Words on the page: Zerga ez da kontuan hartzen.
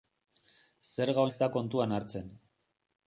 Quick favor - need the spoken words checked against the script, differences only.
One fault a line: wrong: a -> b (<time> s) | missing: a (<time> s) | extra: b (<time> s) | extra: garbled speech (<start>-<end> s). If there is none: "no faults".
no faults